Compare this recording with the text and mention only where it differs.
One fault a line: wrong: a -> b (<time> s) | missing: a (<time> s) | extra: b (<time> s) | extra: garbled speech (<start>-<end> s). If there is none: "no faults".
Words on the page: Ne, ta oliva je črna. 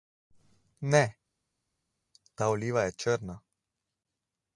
no faults